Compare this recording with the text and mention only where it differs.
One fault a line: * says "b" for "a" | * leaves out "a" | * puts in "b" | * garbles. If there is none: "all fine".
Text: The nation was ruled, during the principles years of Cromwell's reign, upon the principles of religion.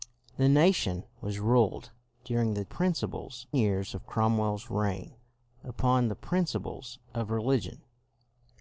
all fine